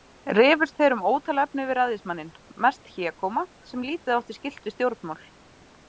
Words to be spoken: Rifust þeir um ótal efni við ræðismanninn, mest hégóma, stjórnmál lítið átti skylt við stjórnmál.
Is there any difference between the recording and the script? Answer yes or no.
yes